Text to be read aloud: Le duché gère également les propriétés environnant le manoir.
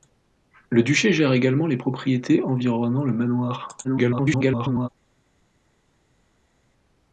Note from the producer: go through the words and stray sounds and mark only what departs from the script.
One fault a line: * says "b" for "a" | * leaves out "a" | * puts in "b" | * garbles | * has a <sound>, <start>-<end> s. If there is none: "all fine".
* garbles